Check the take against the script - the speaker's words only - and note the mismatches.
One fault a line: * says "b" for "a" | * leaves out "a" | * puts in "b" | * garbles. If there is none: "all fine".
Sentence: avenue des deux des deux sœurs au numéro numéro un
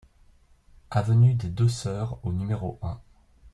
* leaves out "des deux"
* leaves out "numéro"